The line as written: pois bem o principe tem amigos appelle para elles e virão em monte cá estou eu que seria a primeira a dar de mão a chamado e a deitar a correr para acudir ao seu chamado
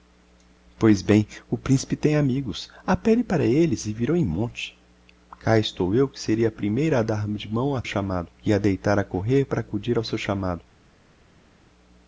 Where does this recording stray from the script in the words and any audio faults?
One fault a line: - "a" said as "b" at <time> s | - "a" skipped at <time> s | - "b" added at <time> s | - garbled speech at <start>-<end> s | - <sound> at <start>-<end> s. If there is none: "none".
none